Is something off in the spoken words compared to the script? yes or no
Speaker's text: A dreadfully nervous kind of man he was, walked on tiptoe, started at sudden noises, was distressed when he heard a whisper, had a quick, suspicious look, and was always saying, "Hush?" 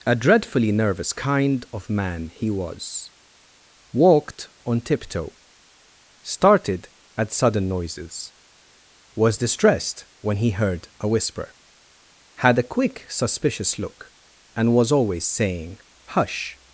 no